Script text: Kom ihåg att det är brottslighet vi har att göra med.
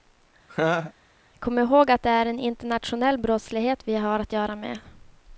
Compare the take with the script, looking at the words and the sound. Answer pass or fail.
fail